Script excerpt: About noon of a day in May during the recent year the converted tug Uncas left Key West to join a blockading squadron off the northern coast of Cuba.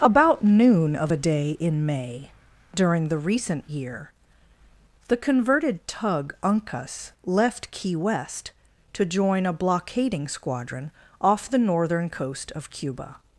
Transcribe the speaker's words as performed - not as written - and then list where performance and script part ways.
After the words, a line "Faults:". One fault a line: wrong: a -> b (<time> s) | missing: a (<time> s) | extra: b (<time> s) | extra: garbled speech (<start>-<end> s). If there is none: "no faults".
About noon of a day in May during the recent year the converted tug Uncas left Key West to join a blockading squadron off the northern coast of Cuba.
Faults:
no faults